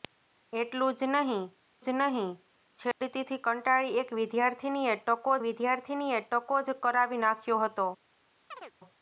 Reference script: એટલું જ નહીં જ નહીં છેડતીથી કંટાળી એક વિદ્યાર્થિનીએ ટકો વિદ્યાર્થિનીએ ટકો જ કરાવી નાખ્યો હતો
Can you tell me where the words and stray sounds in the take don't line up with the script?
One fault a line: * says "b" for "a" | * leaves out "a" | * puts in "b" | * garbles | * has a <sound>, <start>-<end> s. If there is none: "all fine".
* has a dropout, 2.9-3.0 s
* has a chirp, 8.5-8.7 s